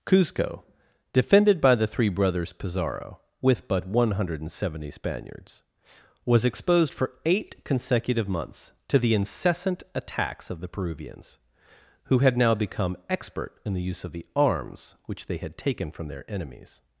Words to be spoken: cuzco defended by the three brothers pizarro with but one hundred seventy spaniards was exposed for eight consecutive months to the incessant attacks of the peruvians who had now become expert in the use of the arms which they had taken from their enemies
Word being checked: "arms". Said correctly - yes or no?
yes